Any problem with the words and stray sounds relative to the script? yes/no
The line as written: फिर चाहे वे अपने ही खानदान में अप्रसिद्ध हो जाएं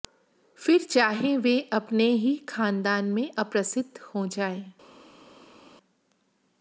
no